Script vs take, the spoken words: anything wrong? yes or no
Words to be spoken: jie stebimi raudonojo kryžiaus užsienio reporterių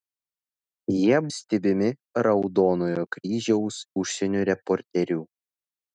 no